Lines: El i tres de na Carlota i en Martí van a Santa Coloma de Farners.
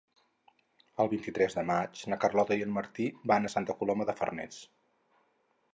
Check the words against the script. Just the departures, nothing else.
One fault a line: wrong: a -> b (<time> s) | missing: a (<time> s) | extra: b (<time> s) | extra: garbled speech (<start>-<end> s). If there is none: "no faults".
extra: vint (1.1 s)
extra: maig (1.7 s)